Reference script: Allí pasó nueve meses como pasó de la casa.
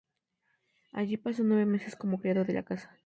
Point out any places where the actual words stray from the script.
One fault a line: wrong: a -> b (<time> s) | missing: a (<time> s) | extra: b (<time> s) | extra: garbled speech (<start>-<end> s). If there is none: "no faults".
wrong: pasó -> criado (2.2 s)